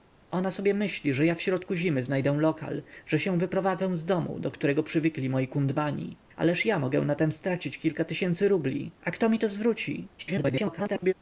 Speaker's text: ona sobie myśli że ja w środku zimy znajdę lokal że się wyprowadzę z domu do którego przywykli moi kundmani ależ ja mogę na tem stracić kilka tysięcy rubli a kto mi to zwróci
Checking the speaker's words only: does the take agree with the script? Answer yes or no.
no